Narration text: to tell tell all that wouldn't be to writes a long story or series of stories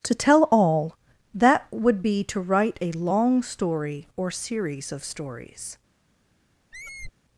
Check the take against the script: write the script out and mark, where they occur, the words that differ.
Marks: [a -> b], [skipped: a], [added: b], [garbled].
to tell [skipped: tell] all that [wouldn't -> would] be to [writes -> write] a long story or series of stories